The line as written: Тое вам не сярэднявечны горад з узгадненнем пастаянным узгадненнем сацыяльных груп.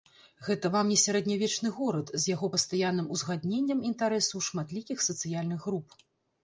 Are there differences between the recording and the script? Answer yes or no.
yes